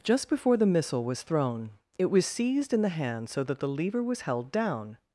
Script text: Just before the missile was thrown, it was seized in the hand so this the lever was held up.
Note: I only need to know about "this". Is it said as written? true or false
false